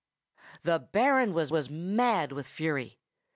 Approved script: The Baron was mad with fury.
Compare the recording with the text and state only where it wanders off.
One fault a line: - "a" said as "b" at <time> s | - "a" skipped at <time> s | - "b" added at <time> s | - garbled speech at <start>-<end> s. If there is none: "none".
- "was" added at 1.5 s